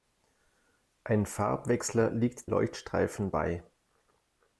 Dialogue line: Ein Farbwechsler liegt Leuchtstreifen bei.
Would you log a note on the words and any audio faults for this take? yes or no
no